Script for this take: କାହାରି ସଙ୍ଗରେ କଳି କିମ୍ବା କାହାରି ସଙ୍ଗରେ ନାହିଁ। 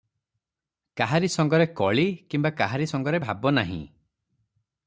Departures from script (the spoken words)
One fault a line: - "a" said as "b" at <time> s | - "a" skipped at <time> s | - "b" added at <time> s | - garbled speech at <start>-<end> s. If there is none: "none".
- "ଭାବ" added at 3.2 s